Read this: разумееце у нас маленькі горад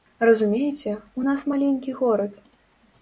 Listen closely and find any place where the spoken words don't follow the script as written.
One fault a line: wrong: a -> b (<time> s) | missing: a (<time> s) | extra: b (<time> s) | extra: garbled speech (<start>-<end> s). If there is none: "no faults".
no faults